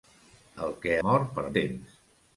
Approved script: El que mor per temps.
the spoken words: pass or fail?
pass